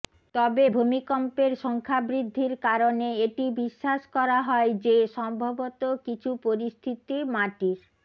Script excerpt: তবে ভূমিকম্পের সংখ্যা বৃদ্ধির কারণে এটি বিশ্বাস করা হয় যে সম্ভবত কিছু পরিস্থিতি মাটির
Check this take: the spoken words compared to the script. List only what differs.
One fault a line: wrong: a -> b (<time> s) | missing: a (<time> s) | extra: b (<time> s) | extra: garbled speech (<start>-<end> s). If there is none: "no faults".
no faults